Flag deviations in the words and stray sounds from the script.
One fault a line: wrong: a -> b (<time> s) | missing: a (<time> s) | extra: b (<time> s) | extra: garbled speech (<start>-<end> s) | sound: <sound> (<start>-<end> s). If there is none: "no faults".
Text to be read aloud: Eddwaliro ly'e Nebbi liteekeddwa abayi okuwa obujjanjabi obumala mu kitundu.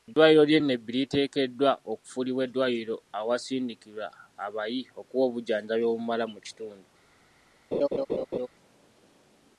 extra: okufuulibwa eddwaliro awasindikirwa (1.9 s)
sound: laugh (7.7-8.5 s)